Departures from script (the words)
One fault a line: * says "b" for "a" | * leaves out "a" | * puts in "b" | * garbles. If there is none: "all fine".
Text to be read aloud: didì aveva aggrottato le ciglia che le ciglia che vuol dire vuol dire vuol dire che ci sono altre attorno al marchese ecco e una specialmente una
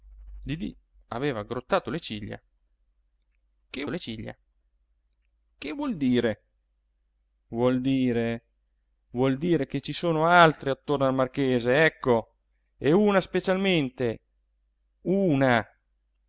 all fine